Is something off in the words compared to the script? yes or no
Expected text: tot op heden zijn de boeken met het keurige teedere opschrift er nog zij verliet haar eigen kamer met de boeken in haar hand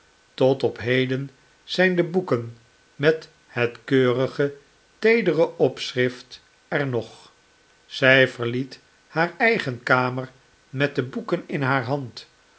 no